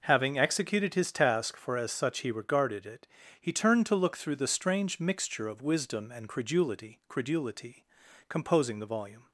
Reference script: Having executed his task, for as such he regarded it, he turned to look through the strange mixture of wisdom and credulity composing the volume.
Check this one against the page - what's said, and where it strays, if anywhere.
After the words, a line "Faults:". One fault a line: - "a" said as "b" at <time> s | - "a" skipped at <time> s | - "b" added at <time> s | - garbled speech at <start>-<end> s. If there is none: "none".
Having executed his task, for as such he regarded it, he turned to look through the strange mixture of wisdom and credulity credulity composing the volume.
Faults:
- "credulity" added at 7.1 s